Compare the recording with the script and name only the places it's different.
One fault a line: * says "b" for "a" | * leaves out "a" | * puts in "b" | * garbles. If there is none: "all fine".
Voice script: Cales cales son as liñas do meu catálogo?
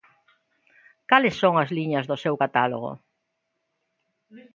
* leaves out "cales"
* says "seu" for "meu"